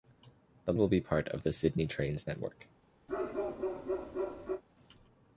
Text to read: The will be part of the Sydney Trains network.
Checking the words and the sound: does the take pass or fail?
fail